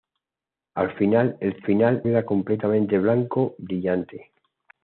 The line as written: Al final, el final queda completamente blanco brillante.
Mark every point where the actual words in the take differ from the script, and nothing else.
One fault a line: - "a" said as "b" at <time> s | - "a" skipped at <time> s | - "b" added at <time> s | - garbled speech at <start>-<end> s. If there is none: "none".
none